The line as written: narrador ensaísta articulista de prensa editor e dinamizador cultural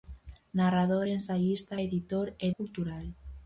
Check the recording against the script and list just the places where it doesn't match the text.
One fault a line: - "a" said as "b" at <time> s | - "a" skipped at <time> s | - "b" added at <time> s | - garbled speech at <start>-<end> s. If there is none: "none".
- "articulista de prensa" skipped at 1.7 s
- "dinamizador" skipped at 2.5 s